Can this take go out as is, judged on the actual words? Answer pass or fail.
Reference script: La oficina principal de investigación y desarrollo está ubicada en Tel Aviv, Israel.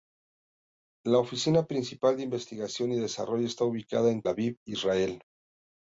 fail